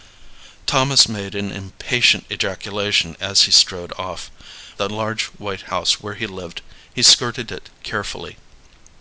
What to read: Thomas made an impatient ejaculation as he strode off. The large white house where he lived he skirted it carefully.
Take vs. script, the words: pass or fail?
pass